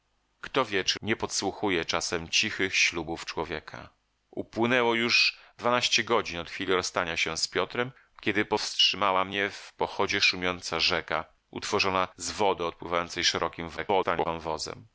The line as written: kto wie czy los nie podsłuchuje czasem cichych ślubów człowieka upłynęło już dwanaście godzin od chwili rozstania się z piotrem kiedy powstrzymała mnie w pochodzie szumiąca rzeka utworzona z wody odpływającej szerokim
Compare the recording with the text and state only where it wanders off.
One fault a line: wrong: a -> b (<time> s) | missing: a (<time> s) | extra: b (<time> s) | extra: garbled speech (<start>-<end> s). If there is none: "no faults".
missing: los (1.0 s)
extra: garbled speech (13.8-14.3 s)